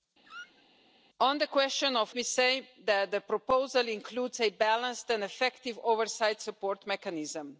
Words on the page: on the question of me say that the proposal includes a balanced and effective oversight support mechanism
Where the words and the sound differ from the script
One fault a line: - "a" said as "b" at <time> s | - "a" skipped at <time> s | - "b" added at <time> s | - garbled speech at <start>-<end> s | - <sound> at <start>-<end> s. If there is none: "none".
- squeak at 0.2-0.6 s